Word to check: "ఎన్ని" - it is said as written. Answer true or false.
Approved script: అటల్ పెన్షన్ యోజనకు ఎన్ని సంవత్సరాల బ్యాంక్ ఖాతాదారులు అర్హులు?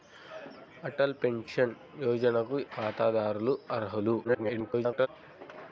false